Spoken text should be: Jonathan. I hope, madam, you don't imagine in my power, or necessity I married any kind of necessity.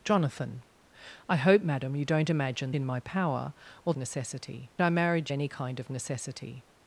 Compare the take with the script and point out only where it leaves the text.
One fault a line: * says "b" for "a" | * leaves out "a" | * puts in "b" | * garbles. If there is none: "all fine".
all fine